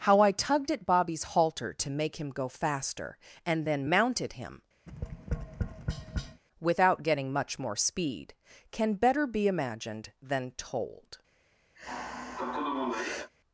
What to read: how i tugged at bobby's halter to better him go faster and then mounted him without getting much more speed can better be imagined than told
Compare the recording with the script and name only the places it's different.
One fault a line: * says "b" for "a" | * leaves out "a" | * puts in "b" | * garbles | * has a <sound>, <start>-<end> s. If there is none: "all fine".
* says "make" for "better"
* has a tap, 4.9-6.4 s
* has a sigh, 11.7-13.3 s